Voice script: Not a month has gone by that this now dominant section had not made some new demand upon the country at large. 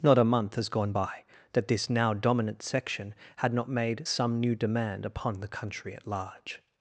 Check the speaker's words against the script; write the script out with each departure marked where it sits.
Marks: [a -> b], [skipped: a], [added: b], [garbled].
Not a month has gone by that this now dominant section had not made some new demand upon the country at large.